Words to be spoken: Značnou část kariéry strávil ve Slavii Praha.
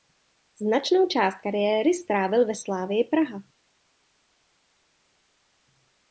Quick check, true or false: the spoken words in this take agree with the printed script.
true